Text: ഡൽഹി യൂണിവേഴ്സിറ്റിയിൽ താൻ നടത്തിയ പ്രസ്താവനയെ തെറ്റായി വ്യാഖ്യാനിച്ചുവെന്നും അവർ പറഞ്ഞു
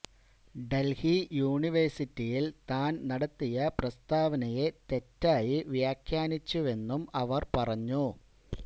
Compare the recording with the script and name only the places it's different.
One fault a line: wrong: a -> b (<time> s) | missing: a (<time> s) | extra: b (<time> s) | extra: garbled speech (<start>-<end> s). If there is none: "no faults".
no faults